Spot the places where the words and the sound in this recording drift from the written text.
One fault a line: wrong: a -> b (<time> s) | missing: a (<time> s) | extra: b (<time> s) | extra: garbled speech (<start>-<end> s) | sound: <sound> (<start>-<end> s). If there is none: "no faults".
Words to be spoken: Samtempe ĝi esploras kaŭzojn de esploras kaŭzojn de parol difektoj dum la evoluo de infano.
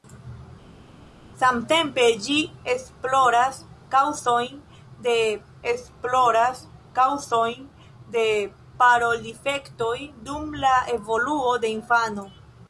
no faults